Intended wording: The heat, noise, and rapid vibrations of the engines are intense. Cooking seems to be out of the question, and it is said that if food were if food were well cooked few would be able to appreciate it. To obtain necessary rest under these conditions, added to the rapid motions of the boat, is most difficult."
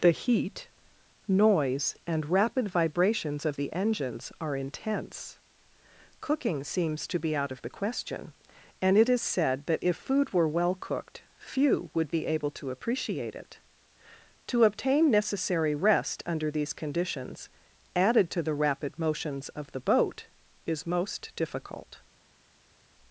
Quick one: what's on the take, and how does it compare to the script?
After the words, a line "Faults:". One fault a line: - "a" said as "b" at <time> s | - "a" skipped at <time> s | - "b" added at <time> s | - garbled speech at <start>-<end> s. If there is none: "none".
The heat, noise, and rapid vibrations of the engines are intense. Cooking seems to be out of the question, and it is said that if food were well cooked few would be able to appreciate it. To obtain necessary rest under these conditions, added to the rapid motions of the boat, is most difficult."
Faults:
- "if food were" skipped at 10.5 s